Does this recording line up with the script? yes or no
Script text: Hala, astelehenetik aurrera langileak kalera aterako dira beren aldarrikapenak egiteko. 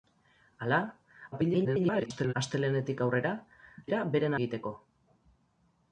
no